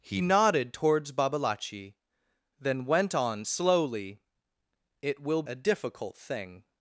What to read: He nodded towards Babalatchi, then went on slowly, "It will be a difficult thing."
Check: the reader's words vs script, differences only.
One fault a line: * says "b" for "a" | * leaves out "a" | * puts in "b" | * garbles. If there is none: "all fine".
* leaves out "be"